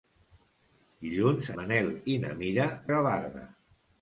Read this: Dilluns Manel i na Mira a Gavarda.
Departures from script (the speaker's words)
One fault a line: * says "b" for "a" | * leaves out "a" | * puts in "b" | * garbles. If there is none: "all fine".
all fine